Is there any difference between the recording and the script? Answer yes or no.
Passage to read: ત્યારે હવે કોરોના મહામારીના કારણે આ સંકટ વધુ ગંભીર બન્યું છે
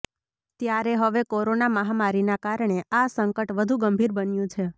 no